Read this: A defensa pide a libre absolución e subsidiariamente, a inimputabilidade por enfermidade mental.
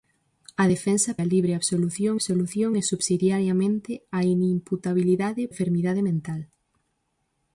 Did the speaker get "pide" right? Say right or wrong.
wrong